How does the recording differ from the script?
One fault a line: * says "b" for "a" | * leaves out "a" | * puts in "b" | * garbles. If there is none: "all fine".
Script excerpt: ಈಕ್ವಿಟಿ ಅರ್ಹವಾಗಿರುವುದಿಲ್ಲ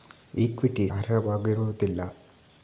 all fine